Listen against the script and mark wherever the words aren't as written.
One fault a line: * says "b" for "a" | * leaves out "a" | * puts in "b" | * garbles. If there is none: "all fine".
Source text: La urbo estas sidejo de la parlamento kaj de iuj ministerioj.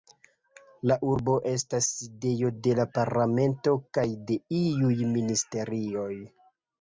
all fine